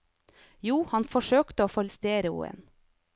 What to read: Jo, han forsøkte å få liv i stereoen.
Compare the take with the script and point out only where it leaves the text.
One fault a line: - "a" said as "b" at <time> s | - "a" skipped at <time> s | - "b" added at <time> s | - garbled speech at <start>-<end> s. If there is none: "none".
- "liv" skipped at 1.8 s